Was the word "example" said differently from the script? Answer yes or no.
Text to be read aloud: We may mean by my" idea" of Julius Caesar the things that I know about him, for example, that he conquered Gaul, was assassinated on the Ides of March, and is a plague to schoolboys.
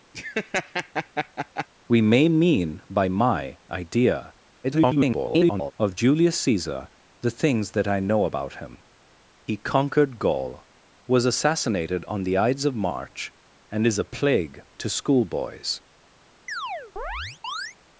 yes